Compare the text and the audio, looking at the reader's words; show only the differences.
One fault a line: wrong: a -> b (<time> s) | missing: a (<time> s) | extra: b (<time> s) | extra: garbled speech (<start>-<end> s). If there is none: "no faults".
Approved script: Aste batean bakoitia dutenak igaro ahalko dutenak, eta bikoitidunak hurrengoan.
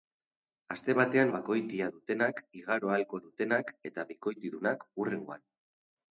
no faults